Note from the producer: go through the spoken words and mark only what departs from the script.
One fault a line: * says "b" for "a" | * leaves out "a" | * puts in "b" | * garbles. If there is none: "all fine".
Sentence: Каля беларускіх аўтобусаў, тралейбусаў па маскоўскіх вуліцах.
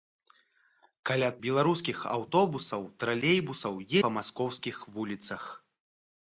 all fine